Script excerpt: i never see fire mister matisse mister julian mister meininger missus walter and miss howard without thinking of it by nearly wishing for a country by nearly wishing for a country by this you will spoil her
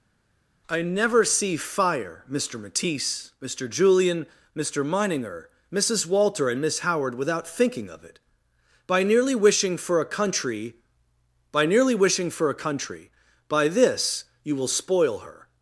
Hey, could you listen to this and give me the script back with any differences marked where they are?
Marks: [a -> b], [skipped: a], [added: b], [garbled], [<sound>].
i never see fire mister matisse mister julian mister meininger missus walter and miss howard without thinking of it by nearly wishing for a country by nearly wishing for a country by this you will spoil her